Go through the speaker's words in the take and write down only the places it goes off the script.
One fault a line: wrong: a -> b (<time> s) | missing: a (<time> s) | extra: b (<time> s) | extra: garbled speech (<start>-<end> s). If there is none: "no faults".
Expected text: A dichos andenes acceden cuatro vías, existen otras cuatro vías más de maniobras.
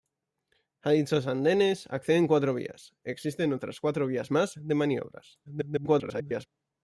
extra: garbled speech (5.5-6.5 s)